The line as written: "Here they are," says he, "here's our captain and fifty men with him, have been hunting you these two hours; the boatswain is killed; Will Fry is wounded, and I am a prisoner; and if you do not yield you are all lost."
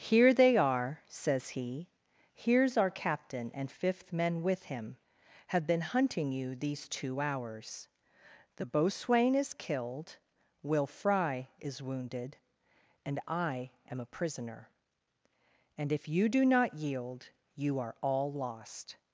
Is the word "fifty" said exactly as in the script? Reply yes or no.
no